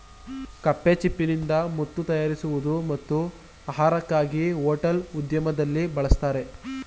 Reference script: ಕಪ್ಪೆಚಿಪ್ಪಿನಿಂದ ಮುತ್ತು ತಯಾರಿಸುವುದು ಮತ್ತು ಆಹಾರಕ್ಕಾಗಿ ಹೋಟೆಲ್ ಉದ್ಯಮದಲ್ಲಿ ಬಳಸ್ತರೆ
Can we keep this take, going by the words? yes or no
yes